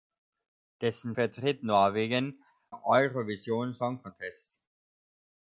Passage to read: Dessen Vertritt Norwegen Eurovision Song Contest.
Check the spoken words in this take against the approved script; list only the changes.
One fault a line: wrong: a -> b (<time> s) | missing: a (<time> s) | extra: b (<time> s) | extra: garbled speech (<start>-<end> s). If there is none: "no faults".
no faults